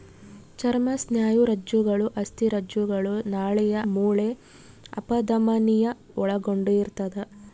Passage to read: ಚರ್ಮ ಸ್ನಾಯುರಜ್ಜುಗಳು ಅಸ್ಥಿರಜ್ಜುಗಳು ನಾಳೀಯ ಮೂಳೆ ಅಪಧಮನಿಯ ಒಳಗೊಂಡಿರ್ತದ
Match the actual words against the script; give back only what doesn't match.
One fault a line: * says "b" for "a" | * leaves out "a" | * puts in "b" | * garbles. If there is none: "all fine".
all fine